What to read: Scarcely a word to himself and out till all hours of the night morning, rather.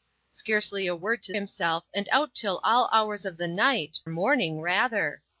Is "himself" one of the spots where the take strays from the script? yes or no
no